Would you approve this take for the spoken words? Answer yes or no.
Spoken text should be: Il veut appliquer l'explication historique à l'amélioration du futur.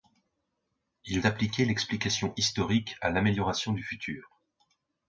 no